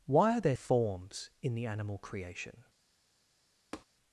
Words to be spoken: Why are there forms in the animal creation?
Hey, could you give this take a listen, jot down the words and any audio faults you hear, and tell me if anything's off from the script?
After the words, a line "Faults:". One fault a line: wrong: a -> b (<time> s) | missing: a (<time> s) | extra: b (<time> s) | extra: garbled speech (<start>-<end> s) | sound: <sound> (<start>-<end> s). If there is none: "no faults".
Why are there forms in the animal creation?
Faults:
sound: tap (3.7-3.9 s)